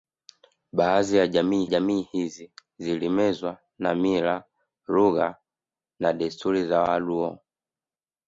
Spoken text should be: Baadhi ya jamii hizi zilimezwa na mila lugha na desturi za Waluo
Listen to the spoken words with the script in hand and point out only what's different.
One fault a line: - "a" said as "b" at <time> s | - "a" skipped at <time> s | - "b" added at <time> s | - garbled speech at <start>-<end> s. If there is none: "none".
- "jamii" added at 1.6 s